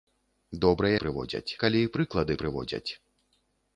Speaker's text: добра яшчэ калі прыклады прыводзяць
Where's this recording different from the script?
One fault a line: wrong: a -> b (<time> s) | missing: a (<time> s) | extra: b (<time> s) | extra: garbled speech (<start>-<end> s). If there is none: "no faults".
wrong: яшчэ -> прыводзяць (1.0 s)